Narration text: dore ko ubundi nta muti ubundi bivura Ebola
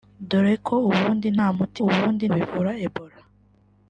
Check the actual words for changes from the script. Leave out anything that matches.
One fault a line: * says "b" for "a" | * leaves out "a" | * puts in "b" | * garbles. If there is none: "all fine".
all fine